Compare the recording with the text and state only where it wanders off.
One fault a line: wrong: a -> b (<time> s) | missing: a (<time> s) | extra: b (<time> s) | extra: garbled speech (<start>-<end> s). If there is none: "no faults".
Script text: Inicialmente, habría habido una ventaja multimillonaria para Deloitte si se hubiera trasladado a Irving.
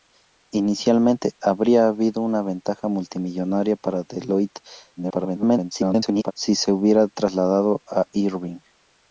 extra: garbled speech (5.0-6.3 s)